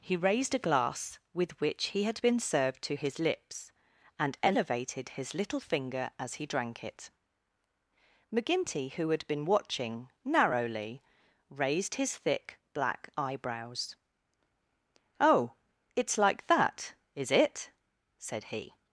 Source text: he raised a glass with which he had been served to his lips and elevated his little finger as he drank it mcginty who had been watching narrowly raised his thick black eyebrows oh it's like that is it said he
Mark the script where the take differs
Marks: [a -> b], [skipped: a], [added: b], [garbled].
he raised a glass with which he had been served to his lips and elevated his little finger as he drank it mcginty who had been watching narrowly raised his thick black eyebrows oh it's like that is it said he